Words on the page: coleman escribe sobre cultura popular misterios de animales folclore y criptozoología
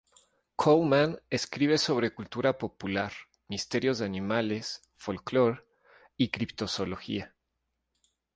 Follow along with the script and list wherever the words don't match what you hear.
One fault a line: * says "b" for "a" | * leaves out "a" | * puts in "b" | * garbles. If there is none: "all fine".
all fine